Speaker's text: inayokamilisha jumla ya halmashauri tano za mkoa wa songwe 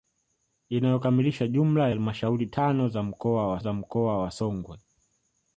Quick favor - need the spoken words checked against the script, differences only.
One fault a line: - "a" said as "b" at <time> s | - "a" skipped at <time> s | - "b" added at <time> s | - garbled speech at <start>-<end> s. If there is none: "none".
- "ya" skipped at 1.9 s
- "za mkoa wa" added at 3.6 s